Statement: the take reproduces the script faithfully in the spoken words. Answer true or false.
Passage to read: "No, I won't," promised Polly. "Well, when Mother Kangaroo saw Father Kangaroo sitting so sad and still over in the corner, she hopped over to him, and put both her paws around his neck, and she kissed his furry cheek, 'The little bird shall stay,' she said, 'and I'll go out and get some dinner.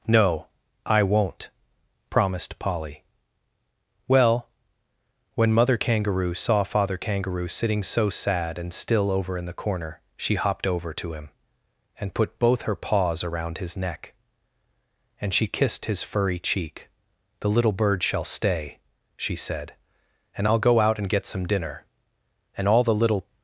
false